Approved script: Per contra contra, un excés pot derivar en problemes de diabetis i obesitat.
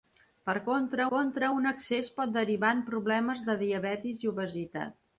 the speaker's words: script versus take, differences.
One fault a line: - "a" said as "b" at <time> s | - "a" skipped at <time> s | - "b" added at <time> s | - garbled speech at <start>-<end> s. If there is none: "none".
none